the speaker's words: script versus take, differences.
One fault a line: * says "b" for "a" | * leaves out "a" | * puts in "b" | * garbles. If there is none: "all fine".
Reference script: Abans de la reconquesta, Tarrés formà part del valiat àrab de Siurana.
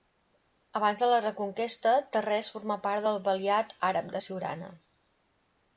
all fine